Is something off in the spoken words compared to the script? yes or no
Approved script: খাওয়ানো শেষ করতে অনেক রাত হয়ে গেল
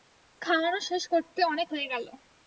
yes